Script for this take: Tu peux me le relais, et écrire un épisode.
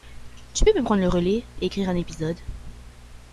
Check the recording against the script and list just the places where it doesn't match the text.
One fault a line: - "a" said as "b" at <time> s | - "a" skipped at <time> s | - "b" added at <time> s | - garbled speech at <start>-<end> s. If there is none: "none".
- "prendre" added at 0.8 s